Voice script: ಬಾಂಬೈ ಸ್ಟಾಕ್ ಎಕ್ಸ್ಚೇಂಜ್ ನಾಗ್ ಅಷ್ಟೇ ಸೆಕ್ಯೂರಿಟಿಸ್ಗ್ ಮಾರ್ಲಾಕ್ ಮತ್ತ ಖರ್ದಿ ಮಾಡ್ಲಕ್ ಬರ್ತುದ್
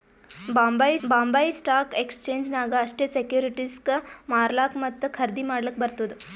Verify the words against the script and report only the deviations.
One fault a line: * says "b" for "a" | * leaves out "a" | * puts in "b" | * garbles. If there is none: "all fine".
* puts in "ಬಾಂಬೈ"